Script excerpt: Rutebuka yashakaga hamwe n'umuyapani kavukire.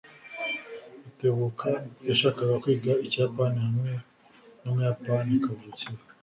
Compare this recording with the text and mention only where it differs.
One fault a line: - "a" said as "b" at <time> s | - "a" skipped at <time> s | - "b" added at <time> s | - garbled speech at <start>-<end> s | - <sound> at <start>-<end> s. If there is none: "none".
- "kwiga Ikiyapani" added at 2.6 s